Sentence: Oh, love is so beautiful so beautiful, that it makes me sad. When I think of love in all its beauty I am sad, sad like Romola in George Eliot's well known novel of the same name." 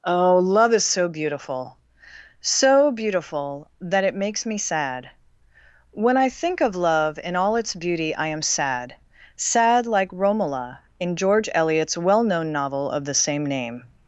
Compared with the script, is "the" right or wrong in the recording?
right